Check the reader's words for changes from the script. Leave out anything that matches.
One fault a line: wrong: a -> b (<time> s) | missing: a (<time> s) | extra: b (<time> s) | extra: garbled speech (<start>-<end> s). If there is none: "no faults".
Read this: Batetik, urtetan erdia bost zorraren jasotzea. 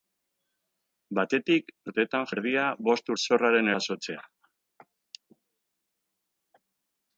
no faults